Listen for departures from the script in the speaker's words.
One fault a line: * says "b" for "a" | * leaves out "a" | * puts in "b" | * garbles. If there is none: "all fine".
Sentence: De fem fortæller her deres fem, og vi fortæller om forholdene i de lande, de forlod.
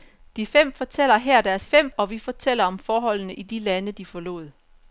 all fine